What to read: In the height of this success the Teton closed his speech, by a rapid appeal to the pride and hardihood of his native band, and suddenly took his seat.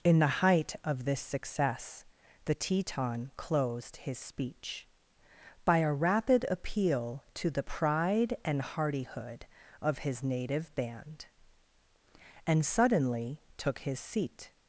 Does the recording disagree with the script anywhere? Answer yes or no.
no